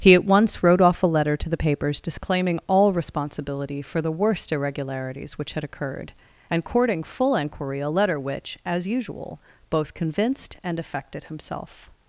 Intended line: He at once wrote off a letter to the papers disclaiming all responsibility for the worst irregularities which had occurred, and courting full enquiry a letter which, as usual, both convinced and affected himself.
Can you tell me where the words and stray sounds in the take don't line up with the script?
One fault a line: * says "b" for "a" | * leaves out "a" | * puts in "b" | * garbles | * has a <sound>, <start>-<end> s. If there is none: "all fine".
all fine